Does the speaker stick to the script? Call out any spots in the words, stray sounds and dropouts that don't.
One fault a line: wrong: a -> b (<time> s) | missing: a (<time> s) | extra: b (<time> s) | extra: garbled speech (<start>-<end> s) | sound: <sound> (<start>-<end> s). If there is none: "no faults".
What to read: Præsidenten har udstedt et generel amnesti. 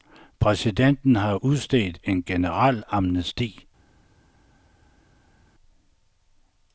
wrong: et -> en (2.0 s)